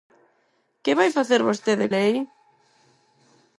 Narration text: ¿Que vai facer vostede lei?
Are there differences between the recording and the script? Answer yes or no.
no